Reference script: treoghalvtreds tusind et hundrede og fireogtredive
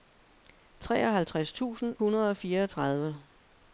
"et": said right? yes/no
no